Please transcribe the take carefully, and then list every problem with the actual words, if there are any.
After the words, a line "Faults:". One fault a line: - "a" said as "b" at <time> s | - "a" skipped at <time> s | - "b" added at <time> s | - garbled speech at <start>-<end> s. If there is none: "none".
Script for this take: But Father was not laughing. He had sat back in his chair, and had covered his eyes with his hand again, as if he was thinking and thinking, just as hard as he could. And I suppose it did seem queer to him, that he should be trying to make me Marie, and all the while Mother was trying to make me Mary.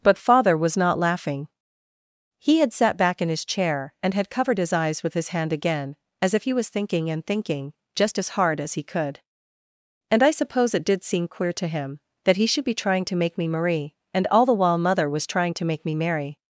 But Father was not laughing. He had sat back in his chair, and had covered his eyes with his hand again, as if he was thinking and thinking, just as hard as he could. And I suppose it did seem queer to him, that he should be trying to make me Marie, and all the while Mother was trying to make me Mary.
Faults:
none